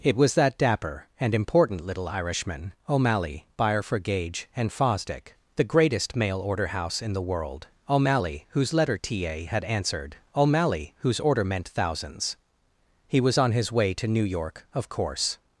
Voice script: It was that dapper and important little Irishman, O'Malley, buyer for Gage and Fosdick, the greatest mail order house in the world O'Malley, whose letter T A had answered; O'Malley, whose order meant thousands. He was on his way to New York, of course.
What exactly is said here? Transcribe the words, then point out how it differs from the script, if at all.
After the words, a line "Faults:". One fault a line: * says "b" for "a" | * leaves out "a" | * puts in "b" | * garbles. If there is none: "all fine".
It was that dapper and important little Irishman, O'Malley, buyer for Gage and Fosdick, the greatest mail order house in the world O'Malley, whose letter T A had answered; O'Malley, whose order meant thousands. He was on his way to New York, of course.
Faults:
all fine